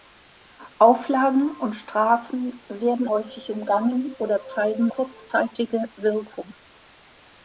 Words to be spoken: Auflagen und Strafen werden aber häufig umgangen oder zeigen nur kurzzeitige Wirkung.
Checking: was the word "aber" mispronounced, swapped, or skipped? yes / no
yes